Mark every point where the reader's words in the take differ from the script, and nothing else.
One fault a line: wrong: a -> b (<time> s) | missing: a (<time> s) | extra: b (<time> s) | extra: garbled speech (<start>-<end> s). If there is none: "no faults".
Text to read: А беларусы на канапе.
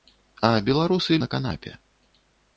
no faults